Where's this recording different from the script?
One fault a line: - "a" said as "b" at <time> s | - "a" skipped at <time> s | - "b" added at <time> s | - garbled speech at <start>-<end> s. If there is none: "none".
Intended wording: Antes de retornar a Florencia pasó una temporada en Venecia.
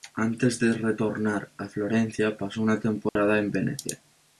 none